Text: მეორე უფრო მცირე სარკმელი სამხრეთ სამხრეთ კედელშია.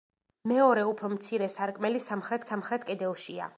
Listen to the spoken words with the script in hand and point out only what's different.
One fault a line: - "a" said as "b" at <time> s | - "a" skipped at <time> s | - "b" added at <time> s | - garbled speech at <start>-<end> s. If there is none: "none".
none